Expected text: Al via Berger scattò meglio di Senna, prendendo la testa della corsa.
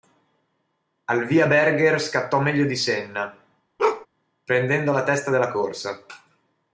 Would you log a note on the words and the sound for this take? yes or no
yes